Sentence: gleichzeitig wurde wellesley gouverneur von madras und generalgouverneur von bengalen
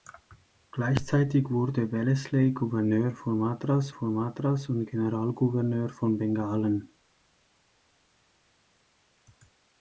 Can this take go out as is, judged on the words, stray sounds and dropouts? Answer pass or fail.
fail